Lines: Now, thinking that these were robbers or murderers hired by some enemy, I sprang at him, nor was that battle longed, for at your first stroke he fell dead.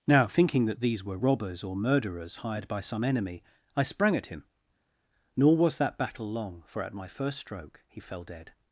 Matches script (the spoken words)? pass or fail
fail